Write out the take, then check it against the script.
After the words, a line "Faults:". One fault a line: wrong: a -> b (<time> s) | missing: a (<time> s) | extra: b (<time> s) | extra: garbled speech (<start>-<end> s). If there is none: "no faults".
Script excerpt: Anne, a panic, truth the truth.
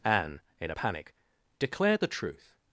Anne, in a panic, declared the truth.
Faults:
extra: in (0.6 s)
wrong: truth -> declared (1.6 s)